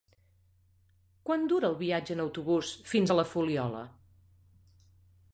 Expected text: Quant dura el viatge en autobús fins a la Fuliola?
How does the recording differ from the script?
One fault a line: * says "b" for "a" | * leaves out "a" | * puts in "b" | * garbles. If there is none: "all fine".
all fine